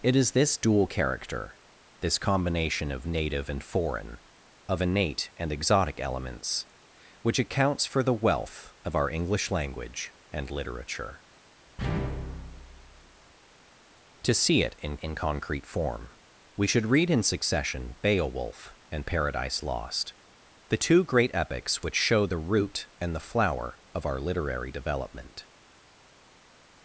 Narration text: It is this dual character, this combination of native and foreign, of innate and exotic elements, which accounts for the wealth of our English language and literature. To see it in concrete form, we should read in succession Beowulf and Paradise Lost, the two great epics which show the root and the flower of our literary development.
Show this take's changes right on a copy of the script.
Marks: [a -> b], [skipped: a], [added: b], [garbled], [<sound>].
It is this dual character, this combination of native and foreign, of innate and exotic elements, which accounts for the wealth of our English language and literature. To see it in [added: in] concrete form, we should read in succession Beowulf and Paradise Lost, the two great epics which show the root and the flower of our literary development.